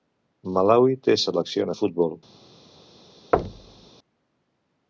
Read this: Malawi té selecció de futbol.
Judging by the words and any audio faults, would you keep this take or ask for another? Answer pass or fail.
fail